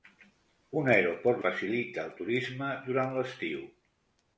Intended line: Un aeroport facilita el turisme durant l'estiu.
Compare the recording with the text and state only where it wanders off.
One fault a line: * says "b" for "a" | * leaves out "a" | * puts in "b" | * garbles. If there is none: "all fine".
all fine